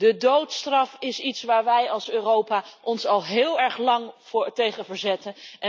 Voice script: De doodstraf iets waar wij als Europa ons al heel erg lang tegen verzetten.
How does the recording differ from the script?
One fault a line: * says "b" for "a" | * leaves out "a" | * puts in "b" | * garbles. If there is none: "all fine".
* puts in "is"